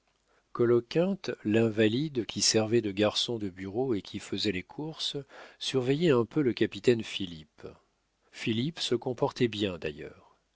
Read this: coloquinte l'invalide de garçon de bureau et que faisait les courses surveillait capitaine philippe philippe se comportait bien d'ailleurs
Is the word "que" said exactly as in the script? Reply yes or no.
no